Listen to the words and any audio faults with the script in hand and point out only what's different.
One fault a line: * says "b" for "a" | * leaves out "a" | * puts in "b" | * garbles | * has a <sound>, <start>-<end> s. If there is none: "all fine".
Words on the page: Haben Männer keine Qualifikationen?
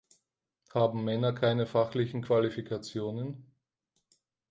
* puts in "fachlichen"